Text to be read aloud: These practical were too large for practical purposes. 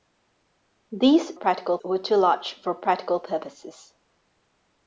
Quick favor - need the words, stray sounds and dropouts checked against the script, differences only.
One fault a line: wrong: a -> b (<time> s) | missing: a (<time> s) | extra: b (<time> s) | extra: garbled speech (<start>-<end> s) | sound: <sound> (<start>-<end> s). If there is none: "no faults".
no faults